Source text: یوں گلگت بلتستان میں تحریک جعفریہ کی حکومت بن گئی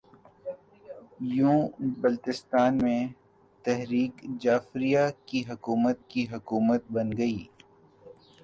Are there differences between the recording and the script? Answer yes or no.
yes